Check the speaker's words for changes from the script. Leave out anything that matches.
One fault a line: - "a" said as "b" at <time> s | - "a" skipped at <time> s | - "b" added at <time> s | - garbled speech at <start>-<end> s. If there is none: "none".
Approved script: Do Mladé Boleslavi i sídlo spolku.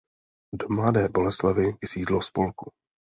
none